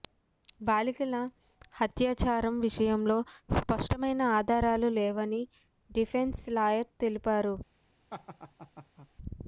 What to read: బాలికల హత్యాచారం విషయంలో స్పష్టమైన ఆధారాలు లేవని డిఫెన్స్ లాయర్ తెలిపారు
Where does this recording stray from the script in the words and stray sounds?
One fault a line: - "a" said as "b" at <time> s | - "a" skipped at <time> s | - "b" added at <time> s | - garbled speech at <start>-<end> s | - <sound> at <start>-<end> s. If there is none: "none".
- laugh at 8.1-9.1 s